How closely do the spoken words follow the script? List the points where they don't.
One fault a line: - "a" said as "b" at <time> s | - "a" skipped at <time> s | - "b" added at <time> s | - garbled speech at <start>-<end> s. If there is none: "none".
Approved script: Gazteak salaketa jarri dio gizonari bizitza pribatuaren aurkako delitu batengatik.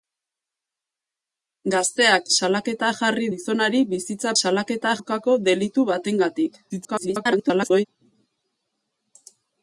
- "dio" skipped at 3.3 s
- "pribatuaren" said as "salaketa" at 4.4 s
- garbled speech at 6.7-7.9 s